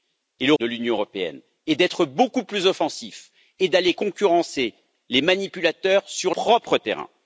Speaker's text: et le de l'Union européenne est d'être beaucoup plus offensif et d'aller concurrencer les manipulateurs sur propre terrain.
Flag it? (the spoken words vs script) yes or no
no